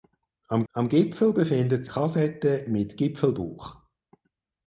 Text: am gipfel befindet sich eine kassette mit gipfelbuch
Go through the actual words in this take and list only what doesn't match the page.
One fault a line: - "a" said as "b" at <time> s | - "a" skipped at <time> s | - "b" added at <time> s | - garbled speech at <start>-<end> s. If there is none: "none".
- "am" added at 0.7 s
- "sich eine" skipped at 1.8 s